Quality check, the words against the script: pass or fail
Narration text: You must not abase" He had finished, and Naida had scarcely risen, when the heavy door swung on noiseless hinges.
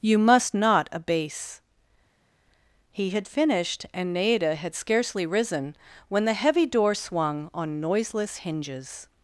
pass